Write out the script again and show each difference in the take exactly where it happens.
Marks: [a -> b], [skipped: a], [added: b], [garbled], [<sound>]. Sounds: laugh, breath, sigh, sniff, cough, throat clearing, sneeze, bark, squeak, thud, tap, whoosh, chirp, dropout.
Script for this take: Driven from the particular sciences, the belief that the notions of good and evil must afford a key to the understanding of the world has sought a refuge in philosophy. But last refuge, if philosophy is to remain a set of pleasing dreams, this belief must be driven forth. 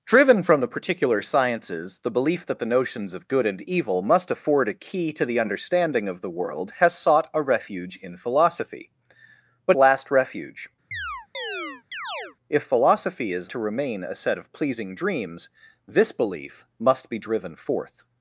Driven from the particular sciences, the belief that the notions of good and evil must afford a key to the understanding of the world has sought a refuge in philosophy. But last refuge, [chirp] if philosophy is to remain a set of pleasing dreams, this belief must be driven forth.